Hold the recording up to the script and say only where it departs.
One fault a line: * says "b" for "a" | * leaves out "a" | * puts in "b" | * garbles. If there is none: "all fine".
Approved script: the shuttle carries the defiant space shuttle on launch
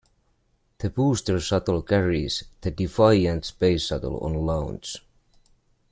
* puts in "booster"